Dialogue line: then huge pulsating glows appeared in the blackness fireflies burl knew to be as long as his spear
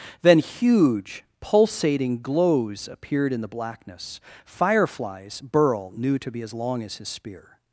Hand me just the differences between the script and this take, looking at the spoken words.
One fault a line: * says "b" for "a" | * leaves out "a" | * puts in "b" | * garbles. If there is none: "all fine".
all fine